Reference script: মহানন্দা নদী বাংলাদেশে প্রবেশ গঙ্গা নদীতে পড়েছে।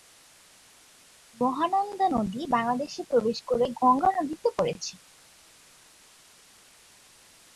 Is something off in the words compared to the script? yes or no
yes